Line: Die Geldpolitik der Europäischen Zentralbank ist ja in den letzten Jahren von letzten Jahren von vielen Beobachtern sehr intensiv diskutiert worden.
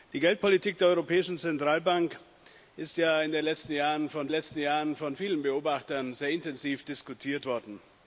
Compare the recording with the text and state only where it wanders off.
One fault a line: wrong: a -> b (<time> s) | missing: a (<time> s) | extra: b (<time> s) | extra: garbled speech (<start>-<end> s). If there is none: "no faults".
no faults